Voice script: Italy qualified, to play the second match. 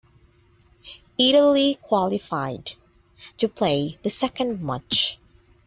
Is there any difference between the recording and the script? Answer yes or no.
no